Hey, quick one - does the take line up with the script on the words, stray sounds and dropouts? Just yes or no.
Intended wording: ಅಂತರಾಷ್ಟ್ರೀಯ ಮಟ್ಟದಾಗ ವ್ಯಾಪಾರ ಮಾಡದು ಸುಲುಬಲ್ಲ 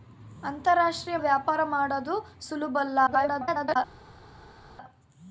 no